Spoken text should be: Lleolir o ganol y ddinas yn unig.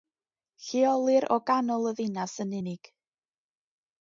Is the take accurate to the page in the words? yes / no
yes